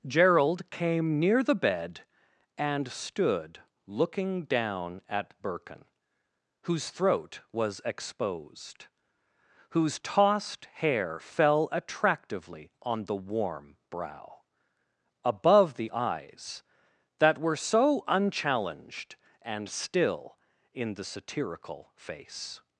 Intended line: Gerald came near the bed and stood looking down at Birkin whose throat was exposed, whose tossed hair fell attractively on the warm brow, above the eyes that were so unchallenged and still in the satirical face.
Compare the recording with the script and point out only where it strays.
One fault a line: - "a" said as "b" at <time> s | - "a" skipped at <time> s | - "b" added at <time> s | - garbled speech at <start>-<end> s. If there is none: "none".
none